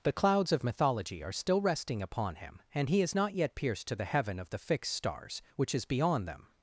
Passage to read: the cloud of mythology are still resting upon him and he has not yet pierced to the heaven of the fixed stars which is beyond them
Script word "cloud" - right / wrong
wrong